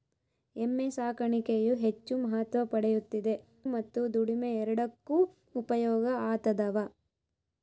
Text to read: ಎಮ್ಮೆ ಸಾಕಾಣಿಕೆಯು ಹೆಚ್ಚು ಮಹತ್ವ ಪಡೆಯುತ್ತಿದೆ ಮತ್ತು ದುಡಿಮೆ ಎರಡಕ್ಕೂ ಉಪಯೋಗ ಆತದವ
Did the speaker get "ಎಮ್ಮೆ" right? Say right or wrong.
right